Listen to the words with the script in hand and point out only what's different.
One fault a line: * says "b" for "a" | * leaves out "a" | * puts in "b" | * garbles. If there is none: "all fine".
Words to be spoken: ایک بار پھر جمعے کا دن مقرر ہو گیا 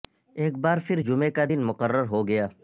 all fine